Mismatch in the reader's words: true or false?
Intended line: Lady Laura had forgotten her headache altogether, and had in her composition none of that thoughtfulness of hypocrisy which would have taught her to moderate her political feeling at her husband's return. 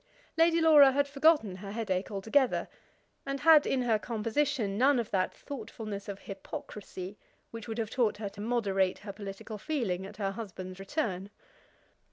false